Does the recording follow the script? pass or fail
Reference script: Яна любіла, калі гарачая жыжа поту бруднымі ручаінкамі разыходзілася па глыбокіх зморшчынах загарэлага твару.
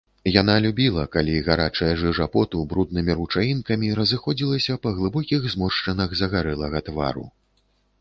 pass